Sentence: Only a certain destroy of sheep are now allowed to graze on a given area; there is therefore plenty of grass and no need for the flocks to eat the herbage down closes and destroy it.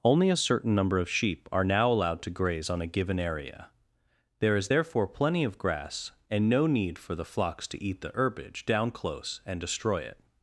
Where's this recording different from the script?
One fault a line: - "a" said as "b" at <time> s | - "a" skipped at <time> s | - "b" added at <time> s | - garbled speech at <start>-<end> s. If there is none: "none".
- "destroy" said as "number" at 0.7 s
- "closes" said as "close" at 8.9 s